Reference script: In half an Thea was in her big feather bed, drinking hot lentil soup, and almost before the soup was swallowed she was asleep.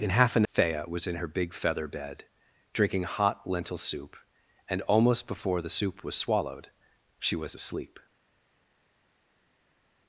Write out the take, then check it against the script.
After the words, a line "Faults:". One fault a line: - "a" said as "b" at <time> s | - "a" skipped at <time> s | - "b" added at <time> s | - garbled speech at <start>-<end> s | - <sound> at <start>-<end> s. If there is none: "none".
In half an Thea was in her big feather bed, drinking hot lentil soup, and almost before the soup was swallowed she was asleep.
Faults:
none